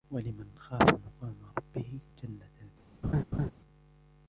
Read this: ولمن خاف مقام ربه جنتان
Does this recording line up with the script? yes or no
yes